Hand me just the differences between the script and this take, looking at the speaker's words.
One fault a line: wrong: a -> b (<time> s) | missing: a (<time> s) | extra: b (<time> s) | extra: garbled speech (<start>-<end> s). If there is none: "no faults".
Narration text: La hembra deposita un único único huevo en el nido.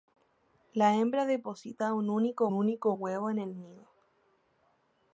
no faults